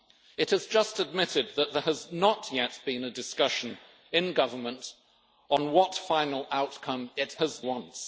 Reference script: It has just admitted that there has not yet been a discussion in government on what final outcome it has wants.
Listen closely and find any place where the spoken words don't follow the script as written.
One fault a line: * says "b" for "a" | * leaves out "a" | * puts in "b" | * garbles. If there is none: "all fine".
all fine